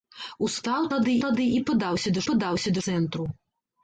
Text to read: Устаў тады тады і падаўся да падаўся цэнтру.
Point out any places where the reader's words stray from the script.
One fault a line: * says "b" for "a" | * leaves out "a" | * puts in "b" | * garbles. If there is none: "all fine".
all fine